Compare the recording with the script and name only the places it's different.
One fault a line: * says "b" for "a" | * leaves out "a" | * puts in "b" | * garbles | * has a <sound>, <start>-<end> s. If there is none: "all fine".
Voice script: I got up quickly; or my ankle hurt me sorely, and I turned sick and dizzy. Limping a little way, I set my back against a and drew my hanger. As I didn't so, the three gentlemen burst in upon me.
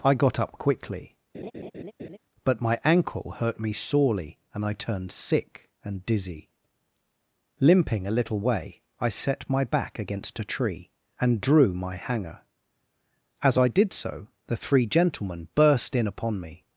* has a laugh, 1.3-2.2 s
* says "but" for "or"
* puts in "tree"
* says "did" for "didn't"